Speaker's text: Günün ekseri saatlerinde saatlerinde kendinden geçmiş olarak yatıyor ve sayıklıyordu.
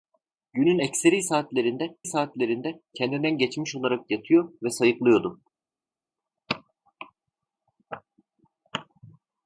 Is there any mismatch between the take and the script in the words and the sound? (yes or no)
no